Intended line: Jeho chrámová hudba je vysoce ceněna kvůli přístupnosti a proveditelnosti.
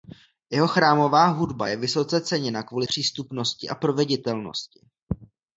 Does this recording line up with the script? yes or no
yes